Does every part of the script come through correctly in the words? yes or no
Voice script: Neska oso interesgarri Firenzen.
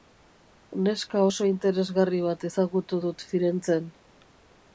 no